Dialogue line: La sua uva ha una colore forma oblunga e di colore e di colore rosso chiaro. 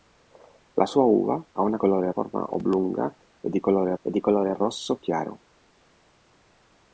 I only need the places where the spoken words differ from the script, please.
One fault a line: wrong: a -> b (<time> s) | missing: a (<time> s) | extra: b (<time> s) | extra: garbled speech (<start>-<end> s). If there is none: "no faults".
no faults